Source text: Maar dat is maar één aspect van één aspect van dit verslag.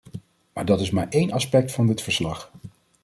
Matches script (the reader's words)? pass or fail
fail